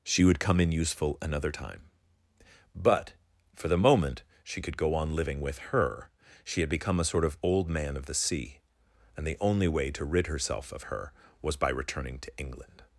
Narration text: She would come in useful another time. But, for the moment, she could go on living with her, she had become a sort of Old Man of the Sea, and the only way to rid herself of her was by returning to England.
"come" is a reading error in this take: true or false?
false